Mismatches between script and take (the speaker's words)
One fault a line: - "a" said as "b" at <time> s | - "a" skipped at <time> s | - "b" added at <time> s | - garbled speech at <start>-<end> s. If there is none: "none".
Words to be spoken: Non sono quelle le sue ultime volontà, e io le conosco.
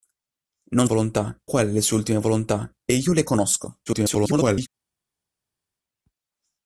- "sono" said as "volontà" at 0.8 s
- garbled speech at 3.9-4.7 s